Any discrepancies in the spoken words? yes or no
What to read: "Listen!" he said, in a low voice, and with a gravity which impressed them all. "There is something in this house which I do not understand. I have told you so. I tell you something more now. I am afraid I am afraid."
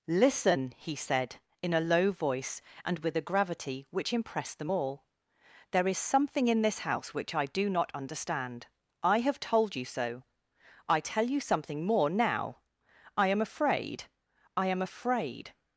no